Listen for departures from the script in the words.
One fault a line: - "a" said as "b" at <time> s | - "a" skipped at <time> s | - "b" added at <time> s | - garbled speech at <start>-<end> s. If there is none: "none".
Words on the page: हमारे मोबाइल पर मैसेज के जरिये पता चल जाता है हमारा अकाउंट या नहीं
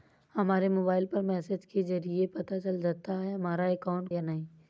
none